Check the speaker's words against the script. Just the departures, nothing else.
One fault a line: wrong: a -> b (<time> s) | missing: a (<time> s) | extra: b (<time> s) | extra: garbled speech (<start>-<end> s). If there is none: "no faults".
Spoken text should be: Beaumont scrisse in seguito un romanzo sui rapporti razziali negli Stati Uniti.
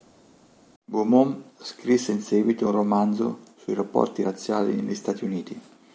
no faults